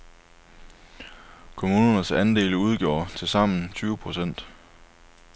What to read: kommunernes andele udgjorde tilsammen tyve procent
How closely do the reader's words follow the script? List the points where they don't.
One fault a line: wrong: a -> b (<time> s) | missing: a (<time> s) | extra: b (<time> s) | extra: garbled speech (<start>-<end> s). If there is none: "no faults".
no faults